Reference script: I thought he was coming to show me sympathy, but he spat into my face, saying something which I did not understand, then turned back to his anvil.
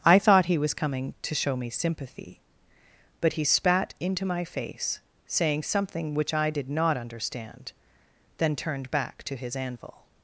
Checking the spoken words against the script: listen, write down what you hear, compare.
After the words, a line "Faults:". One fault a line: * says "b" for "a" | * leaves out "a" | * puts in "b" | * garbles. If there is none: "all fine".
I thought he was coming to show me sympathy, but he spat into my face, saying something which I did not understand, then turned back to his anvil.
Faults:
all fine